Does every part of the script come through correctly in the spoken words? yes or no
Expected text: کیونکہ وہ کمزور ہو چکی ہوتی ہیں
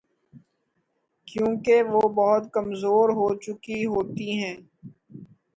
no